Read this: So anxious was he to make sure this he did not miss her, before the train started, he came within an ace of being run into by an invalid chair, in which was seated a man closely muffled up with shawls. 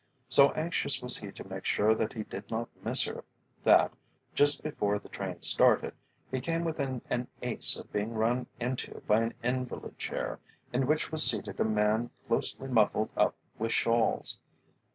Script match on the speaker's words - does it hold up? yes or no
no